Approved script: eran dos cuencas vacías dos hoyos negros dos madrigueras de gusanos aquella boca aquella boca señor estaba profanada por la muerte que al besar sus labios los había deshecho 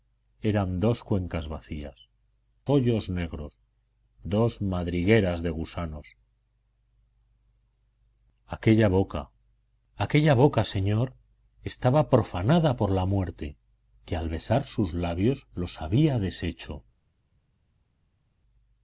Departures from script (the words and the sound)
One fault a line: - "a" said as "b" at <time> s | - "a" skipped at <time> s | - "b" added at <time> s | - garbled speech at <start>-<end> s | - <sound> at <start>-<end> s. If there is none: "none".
- "dos" skipped at 2.1 s